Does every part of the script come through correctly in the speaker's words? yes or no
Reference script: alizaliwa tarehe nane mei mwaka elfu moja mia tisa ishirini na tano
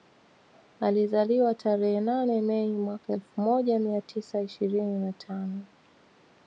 yes